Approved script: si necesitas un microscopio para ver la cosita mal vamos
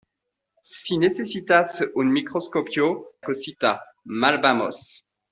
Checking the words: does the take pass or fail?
fail